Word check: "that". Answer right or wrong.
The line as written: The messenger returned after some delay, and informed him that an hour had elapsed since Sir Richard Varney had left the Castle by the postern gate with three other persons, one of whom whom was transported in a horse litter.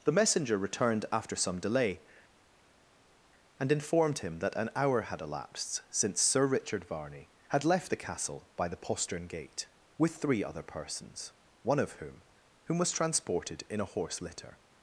right